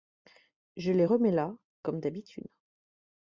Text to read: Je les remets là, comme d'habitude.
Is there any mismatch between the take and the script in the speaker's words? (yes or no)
no